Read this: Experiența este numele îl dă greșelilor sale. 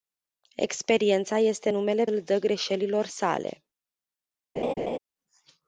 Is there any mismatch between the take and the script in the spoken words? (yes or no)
no